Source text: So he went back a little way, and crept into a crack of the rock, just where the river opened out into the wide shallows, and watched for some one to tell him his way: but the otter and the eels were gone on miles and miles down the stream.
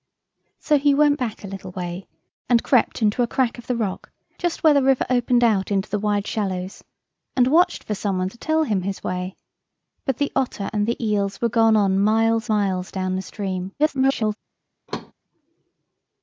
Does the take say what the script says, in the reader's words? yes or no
no